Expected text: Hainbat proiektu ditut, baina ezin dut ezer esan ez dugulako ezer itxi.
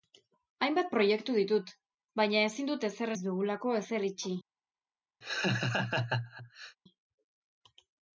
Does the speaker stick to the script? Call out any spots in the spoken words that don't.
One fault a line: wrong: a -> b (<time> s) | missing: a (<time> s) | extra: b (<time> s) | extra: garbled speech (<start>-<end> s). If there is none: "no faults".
missing: esan (3.1 s)